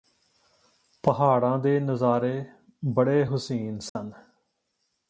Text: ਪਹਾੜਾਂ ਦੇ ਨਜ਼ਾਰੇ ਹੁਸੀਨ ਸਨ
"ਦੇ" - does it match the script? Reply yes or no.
yes